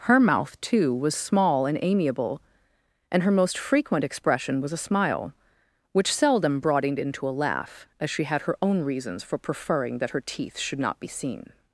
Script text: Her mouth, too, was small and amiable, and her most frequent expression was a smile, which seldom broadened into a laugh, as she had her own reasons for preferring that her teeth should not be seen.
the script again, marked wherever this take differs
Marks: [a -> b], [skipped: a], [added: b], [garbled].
Her mouth, too, was small and amiable, and her most frequent expression was a smile, which seldom broadened into a laugh, as she had her own reasons for preferring that her teeth should not be seen.